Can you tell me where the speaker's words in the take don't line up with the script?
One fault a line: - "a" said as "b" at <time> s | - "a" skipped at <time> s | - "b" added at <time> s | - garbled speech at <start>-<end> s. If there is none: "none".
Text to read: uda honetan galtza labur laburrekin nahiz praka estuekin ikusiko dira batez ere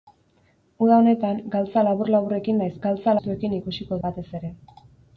- "praka" said as "galtza" at 2.9 s
- "dira" skipped at 4.0 s